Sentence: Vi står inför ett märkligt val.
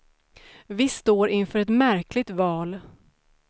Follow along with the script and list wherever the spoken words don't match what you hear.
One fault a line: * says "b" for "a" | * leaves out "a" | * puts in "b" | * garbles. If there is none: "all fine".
all fine